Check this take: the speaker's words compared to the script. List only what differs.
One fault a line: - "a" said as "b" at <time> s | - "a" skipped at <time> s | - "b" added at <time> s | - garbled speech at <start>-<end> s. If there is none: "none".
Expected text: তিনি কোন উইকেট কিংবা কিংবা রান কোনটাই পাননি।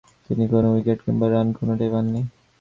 - "কিংবা" skipped at 1.3 s